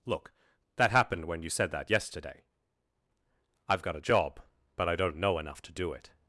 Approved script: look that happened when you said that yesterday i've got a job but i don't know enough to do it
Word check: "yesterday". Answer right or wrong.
right